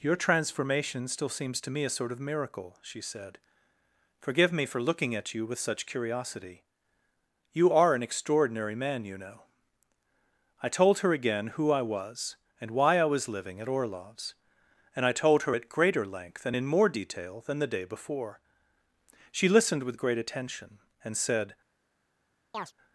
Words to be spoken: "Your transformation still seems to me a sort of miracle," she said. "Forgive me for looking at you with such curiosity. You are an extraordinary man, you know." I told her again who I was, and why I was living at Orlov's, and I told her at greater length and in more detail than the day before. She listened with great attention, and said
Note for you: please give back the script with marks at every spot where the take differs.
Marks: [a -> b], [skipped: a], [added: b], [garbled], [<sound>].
"Your transformation still seems to me a sort of miracle," she said. "Forgive me for looking at you with such curiosity. You are an extraordinary man, you know." I told her again who I was, and why I was living at Orlov's, and I told her at greater length and in more detail than the day before. She listened with great attention, and said [chirp]